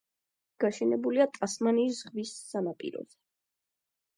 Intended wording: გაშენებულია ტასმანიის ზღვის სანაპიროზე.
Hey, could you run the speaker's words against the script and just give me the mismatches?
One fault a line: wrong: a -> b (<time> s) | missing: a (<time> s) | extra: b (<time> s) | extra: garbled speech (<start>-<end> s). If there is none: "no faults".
no faults